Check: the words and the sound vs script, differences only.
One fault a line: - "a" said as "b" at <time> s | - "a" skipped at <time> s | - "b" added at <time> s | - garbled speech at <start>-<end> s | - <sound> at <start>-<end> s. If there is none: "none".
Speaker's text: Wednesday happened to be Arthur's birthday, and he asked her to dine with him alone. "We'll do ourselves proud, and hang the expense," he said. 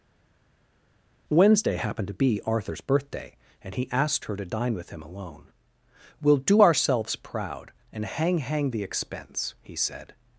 - "hang" added at 8.4 s